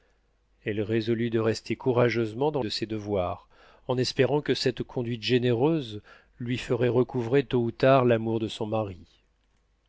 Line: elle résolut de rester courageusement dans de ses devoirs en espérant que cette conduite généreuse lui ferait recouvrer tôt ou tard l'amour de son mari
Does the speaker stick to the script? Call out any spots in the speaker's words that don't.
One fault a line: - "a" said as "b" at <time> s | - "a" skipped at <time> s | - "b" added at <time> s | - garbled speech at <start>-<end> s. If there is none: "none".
none